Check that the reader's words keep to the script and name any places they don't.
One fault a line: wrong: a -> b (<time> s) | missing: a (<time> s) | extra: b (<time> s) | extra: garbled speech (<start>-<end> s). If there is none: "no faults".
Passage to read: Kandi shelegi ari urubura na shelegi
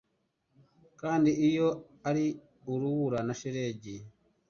wrong: shelegi -> iyo (1.5 s)